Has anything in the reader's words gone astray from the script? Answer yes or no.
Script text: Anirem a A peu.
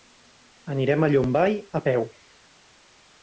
yes